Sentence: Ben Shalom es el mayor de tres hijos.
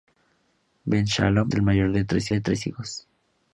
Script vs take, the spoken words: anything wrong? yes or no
yes